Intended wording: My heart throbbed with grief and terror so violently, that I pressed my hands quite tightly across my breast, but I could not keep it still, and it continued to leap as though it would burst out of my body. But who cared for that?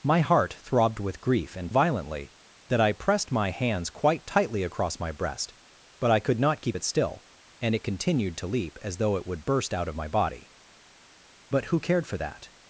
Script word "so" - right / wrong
wrong